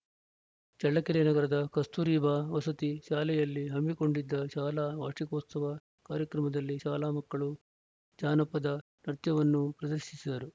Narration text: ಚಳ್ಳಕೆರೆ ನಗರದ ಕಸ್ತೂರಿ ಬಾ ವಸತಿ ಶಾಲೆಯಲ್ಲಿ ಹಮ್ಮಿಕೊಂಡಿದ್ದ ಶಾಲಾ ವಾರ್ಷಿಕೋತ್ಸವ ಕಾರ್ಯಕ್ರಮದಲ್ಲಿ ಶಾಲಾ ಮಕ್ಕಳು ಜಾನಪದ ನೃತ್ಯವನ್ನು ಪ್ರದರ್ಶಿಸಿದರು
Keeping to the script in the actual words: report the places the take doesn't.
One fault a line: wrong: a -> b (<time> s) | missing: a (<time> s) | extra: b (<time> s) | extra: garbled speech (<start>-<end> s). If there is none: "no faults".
no faults